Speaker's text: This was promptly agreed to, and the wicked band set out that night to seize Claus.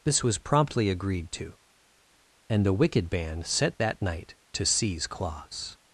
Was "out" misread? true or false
true